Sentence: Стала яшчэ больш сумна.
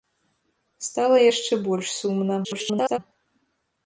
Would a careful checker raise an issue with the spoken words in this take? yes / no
yes